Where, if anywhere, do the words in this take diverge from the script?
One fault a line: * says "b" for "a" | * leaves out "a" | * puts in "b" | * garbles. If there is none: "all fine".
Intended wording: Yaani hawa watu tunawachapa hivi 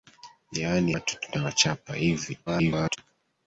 * leaves out "hawa"
* garbles